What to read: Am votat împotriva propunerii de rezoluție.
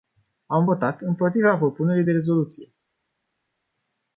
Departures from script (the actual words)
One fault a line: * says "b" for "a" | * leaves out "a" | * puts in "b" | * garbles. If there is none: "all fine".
all fine